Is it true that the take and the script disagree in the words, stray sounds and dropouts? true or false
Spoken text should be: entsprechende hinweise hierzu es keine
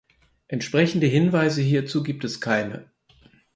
true